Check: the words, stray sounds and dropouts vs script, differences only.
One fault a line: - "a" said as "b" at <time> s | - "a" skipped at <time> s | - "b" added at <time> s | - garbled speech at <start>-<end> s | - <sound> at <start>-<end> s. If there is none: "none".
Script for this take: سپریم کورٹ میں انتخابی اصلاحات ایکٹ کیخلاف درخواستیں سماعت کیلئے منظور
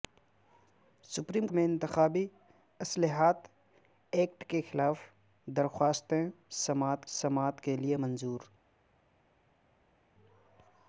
- "کورٹ" skipped at 1.5 s
- "سماعت" added at 7.2 s